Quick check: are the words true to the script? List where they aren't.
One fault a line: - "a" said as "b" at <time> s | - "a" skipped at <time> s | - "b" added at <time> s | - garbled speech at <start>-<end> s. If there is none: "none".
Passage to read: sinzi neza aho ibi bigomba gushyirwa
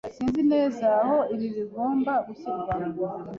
none